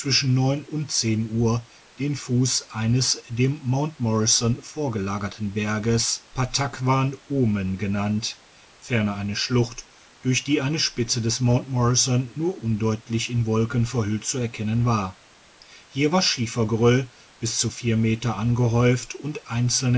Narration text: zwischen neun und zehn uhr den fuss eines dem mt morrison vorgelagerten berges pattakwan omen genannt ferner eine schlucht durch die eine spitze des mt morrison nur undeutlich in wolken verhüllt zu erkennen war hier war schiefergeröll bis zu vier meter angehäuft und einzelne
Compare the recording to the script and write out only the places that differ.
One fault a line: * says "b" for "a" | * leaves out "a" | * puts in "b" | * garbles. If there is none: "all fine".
all fine